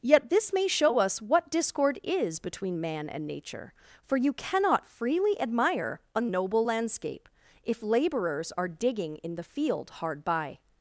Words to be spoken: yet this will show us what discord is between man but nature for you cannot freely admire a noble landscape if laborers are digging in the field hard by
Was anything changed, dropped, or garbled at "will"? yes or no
yes